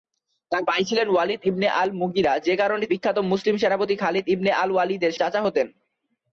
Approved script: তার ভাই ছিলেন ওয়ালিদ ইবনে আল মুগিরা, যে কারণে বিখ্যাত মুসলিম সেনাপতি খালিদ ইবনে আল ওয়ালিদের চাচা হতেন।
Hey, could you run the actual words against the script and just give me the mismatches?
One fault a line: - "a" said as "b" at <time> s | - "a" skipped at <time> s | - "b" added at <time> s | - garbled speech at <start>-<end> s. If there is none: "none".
none